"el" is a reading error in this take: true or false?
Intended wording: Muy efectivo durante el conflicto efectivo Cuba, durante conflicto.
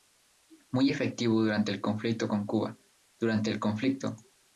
false